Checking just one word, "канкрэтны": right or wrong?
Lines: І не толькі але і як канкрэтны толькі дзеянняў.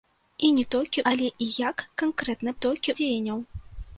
right